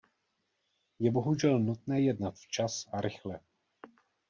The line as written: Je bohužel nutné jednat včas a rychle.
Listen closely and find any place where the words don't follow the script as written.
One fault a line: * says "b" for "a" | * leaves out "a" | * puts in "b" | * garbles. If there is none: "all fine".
all fine